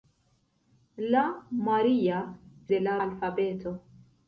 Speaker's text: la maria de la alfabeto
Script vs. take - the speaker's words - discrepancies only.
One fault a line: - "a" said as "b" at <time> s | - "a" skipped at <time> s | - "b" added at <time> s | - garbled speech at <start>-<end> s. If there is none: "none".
none